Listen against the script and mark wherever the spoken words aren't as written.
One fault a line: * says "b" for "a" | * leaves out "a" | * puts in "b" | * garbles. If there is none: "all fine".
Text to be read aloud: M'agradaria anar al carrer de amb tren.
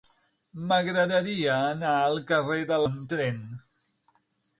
all fine